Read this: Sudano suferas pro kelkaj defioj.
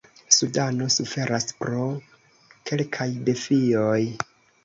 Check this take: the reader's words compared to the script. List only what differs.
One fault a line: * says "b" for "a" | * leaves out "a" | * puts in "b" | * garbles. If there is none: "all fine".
all fine